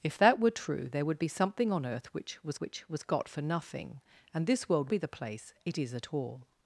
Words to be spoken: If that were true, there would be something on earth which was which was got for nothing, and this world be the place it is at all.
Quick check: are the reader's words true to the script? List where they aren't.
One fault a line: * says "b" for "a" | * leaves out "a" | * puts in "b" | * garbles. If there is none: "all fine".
all fine